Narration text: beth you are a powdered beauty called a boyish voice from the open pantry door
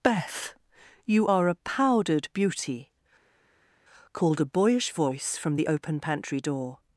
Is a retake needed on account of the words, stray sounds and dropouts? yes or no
no